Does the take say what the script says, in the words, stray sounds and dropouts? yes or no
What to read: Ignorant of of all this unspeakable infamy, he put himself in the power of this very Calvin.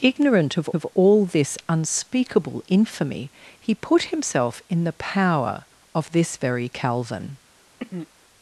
no